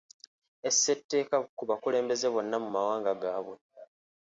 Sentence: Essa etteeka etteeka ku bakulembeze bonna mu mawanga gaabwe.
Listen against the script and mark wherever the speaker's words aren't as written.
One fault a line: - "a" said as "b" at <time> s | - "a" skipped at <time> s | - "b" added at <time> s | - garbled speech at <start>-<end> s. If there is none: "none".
- "etteeka" skipped at 1.4 s